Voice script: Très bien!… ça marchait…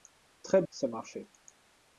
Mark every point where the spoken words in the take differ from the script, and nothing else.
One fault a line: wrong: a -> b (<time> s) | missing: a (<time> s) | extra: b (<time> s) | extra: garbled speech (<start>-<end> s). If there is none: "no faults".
missing: bien (0.6 s)